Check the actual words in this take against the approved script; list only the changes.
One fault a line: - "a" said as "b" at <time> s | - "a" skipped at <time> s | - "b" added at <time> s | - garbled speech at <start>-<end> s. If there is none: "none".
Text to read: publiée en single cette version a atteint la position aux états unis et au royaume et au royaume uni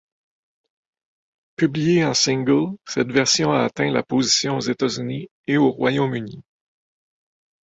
- "et au royaume" skipped at 6.2 s